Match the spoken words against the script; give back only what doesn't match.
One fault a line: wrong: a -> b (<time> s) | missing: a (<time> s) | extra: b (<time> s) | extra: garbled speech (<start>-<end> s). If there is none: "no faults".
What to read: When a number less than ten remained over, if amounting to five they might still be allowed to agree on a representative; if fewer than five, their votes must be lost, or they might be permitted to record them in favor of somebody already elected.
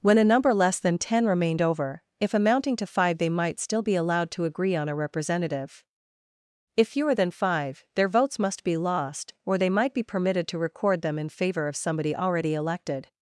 no faults